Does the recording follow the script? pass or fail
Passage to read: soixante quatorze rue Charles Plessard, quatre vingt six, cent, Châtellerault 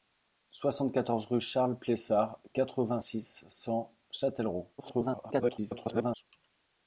fail